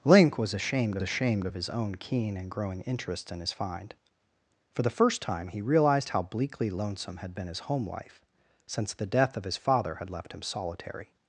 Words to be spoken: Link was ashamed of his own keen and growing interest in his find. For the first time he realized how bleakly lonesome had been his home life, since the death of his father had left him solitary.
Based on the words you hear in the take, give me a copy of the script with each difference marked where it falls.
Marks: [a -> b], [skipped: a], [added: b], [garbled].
Link was ashamed [added: ashamed] of his own keen and growing interest in his find. For the first time he realized how bleakly lonesome had been his home life, since the death of his father had left him solitary.